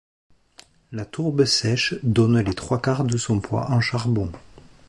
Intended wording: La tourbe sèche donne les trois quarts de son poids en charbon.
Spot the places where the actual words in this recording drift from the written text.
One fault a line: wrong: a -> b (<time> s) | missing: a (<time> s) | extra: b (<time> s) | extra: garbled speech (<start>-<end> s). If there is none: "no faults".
no faults